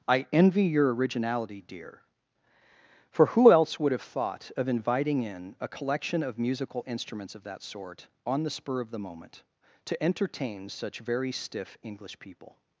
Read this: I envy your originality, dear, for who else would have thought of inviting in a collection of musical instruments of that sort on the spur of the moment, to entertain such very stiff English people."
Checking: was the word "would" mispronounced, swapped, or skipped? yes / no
no